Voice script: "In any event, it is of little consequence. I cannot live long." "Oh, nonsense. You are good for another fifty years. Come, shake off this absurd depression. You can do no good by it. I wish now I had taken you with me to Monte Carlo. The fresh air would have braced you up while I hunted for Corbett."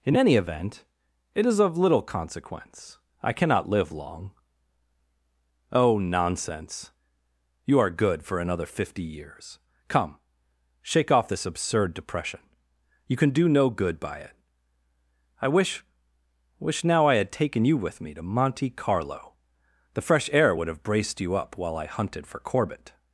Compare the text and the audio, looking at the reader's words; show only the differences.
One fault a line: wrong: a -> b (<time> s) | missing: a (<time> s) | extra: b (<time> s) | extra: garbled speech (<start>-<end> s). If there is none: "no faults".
extra: wish (16.6 s)